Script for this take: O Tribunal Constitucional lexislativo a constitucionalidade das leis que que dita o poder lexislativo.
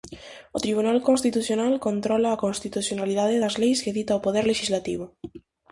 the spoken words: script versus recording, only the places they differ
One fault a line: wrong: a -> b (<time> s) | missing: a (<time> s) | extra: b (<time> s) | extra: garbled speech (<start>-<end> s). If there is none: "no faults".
wrong: lexislativo -> controla (1.9 s)
missing: que (4.0 s)